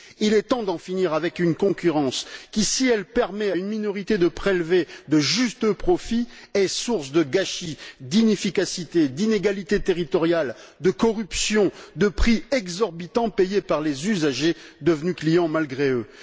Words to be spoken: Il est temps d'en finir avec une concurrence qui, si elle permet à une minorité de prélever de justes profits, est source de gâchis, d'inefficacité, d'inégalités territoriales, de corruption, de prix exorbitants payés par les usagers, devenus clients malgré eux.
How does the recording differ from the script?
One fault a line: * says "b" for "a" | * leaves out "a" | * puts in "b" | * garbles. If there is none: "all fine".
all fine